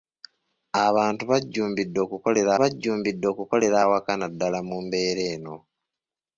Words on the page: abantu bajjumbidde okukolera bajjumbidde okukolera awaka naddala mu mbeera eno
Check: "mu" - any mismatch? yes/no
no